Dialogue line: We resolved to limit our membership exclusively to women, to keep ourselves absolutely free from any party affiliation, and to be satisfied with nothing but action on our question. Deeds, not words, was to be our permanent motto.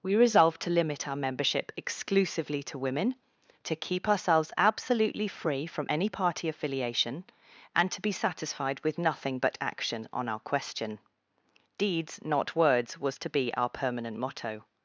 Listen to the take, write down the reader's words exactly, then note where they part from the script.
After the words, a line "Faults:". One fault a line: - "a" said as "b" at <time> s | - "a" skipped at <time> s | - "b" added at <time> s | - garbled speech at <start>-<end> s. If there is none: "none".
We resolved to limit our membership exclusively to women, to keep ourselves absolutely free from any party affiliation, and to be satisfied with nothing but action on our question. Deeds, not words, was to be our permanent motto.
Faults:
none